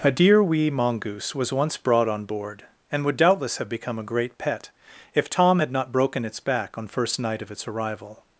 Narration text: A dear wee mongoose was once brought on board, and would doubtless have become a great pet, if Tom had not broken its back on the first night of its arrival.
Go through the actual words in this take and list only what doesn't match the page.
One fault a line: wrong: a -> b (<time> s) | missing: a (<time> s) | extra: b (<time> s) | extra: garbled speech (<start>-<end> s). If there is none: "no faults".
missing: the (6.9 s)